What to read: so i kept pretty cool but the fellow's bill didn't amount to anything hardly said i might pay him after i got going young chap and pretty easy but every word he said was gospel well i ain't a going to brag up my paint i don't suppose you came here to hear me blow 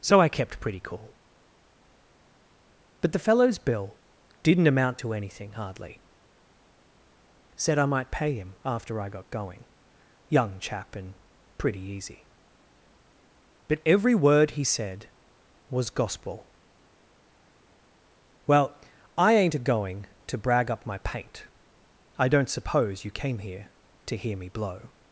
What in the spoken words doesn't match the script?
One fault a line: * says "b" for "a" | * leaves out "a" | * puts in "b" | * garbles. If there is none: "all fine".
all fine